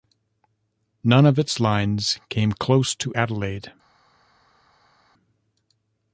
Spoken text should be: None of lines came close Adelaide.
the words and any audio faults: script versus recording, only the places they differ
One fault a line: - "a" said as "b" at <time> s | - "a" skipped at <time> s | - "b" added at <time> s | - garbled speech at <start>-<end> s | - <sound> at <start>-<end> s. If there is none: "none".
- "its" added at 1.4 s
- "to" added at 3.0 s